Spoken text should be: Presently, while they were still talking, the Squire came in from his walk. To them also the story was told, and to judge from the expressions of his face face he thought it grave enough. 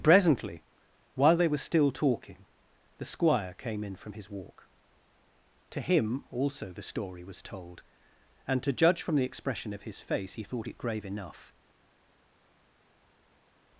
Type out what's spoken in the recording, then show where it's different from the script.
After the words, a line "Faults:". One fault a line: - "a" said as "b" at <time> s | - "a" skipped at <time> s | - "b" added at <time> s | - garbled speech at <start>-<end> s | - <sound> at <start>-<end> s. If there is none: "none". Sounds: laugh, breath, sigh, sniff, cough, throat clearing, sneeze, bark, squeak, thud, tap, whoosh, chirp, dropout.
Presently, while they were still talking, the Squire came in from his walk. To him also the story was told, and to judge from the expression of his face he thought it grave enough.
Faults:
- "them" said as "him" at 5.8 s
- "expressions" said as "expression" at 9.2 s
- "face" skipped at 10.3 s